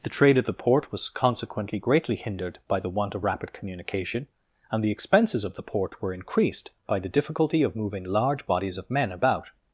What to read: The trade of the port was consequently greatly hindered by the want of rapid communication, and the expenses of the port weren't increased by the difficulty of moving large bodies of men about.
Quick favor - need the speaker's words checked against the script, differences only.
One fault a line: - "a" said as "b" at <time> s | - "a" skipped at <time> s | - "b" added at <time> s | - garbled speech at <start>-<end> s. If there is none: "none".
- "weren't" said as "were" at 6.0 s